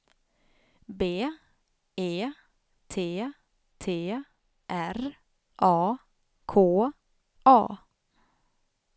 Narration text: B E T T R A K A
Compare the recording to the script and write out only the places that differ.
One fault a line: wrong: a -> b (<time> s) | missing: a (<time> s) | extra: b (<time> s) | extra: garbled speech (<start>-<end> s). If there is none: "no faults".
no faults